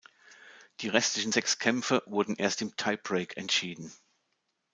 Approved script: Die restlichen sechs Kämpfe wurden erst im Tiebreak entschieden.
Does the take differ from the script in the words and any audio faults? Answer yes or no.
no